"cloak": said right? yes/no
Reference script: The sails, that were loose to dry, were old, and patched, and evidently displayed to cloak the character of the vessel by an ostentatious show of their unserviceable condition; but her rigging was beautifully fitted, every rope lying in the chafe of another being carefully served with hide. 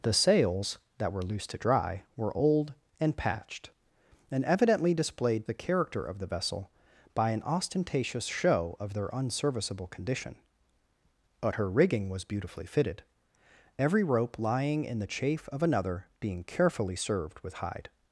no